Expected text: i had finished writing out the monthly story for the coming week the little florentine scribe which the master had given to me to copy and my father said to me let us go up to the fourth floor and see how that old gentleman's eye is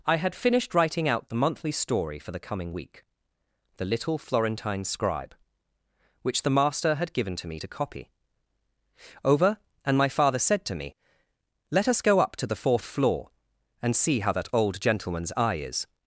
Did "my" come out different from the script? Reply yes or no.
no